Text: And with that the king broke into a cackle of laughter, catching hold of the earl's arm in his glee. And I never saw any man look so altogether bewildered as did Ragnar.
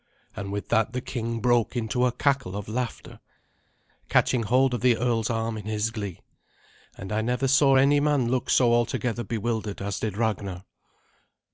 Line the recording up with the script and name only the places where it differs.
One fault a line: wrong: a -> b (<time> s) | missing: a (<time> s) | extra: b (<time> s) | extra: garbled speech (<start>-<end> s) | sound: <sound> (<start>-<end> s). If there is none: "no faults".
no faults